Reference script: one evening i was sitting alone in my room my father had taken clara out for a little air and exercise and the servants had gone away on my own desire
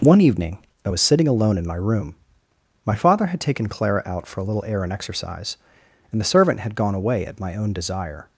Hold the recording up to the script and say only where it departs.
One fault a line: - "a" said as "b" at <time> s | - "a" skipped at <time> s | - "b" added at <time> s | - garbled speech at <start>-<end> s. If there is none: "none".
- "servants" said as "servant" at 6.2 s
- "on" said as "at" at 7.3 s